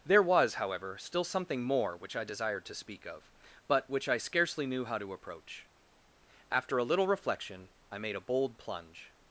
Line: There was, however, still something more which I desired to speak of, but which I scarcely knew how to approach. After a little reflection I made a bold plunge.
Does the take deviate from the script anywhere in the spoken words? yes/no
no